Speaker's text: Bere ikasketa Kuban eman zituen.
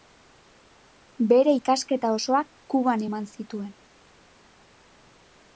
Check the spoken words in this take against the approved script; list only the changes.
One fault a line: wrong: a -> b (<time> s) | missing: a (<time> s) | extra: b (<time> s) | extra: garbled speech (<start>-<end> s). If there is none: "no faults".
extra: osoak (2.2 s)